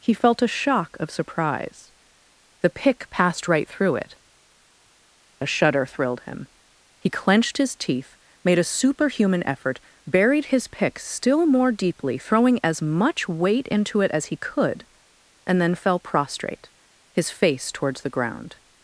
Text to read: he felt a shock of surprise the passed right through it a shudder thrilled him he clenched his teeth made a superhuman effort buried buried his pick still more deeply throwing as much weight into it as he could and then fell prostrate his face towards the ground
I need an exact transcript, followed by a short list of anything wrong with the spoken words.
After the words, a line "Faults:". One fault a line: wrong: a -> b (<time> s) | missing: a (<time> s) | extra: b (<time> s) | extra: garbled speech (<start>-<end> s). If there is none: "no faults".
he felt a shock of surprise the pick passed right through it a shudder thrilled him he clenched his teeth made a superhuman effort buried his pick still more deeply throwing as much weight into it as he could and then fell prostrate his face towards the ground
Faults:
extra: pick (2.7 s)
missing: buried (10.4 s)